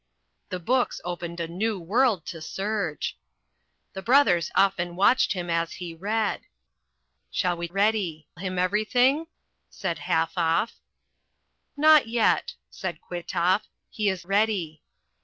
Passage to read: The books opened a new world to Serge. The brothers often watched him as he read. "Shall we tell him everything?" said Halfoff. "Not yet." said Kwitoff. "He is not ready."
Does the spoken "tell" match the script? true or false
false